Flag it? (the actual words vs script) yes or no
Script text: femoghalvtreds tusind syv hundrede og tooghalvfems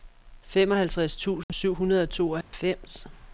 no